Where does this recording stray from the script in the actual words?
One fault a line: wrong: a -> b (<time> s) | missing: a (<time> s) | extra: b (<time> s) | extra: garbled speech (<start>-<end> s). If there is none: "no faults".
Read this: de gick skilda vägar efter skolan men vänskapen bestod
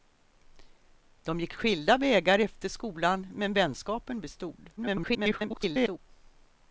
extra: garbled speech (4.8-6.0 s)